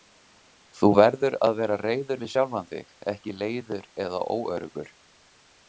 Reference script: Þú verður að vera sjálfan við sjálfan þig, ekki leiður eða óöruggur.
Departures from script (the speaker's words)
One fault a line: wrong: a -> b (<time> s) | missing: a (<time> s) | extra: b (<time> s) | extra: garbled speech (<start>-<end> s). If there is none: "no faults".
wrong: sjálfan -> reiður (1.8 s)